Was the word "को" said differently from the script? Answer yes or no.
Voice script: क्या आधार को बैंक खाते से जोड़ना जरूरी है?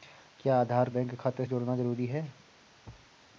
yes